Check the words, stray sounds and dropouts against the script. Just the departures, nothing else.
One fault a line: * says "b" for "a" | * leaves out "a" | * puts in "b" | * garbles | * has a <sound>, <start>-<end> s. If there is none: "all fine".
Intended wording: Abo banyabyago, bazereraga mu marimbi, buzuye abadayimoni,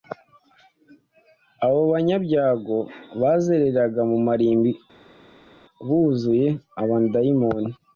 all fine